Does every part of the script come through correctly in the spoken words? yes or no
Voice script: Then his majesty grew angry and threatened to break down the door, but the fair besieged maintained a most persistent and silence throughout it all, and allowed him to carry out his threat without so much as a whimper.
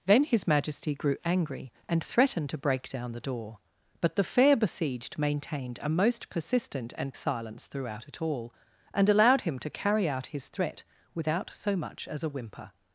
yes